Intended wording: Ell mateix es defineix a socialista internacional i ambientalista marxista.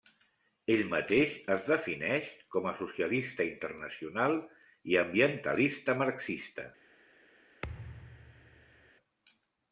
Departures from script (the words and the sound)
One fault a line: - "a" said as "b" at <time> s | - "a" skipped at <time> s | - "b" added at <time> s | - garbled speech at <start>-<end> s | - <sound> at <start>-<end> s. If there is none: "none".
- "com" added at 2.6 s
- thud at 7.6-8.9 s